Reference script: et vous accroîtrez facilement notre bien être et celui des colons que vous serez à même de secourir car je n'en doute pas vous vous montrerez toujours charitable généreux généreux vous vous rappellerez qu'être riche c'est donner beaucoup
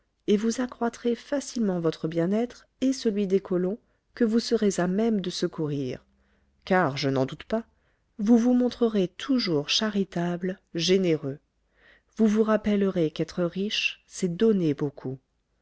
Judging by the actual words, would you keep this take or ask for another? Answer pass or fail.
fail